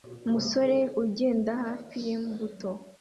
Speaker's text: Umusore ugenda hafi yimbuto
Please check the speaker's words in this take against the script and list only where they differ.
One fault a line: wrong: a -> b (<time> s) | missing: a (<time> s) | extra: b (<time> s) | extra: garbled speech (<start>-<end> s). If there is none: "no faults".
no faults